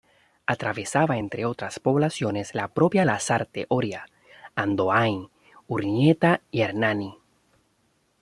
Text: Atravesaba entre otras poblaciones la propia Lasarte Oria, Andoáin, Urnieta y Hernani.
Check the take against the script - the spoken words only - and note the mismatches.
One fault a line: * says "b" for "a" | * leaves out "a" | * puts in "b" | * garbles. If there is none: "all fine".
all fine